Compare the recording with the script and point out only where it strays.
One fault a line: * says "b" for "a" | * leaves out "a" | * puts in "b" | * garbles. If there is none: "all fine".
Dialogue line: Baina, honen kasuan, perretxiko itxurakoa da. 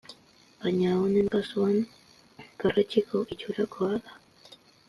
all fine